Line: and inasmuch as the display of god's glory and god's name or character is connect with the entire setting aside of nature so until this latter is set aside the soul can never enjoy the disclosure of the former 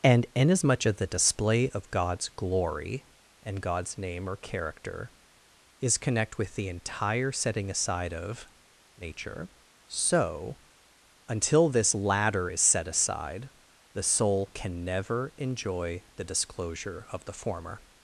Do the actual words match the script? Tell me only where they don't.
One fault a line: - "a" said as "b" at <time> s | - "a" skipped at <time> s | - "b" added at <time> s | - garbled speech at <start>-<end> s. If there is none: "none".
none